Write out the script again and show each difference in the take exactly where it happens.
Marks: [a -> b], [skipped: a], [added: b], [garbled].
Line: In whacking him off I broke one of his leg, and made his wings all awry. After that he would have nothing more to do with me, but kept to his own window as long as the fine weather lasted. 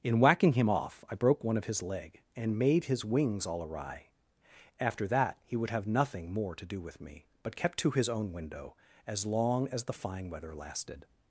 In whacking him off I broke one of his leg, and made his wings all awry. After that he would have nothing more to do with me, but kept to his own window as long as the fine weather lasted.